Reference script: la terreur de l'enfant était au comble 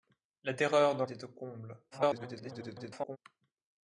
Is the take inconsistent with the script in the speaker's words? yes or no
yes